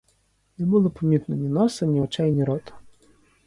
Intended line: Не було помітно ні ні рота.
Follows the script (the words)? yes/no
no